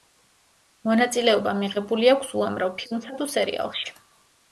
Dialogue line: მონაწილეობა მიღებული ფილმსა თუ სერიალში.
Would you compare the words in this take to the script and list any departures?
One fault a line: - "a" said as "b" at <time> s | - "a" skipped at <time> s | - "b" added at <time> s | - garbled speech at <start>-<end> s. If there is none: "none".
- "აქვს უამრავ" added at 2.1 s